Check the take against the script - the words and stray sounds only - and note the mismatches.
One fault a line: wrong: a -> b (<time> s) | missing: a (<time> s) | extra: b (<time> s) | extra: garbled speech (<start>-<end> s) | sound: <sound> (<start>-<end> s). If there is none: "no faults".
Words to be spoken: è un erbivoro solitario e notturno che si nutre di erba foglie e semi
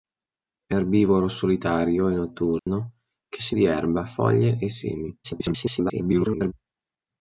missing: un (0.8 s)
sound: dropout (2.6-2.7 s)
missing: nutre (3.6 s)
extra: garbled speech (5.2-6.5 s)